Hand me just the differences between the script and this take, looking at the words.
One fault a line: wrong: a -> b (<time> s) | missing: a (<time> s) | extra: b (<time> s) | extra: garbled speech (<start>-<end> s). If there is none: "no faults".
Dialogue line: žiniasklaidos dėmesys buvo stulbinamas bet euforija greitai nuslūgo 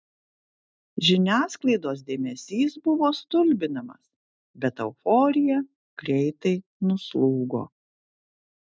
no faults